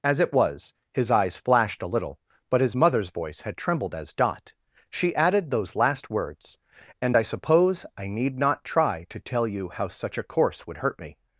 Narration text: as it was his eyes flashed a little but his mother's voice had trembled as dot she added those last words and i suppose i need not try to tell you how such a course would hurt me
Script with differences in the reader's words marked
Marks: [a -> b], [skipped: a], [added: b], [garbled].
as it was his eyes flashed a little but his mother's voice had trembled as dot she added those last words and i suppose i need not try to tell you how such a course would hurt me